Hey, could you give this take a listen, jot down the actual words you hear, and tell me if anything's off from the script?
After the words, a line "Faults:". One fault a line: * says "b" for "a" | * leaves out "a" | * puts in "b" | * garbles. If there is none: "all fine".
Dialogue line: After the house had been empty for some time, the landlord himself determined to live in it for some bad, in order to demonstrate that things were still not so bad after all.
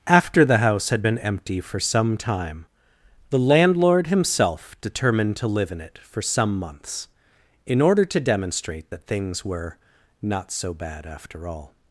After the house had been empty for some time, the landlord himself determined to live in it for some months, in order to demonstrate that things were not so bad after all.
Faults:
* says "months" for "bad"
* leaves out "still"